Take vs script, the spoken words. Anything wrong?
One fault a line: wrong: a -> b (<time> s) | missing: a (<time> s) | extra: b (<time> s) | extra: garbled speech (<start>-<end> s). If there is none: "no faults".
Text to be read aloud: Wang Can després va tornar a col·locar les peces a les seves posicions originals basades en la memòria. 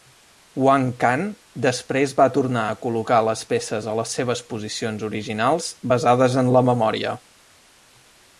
no faults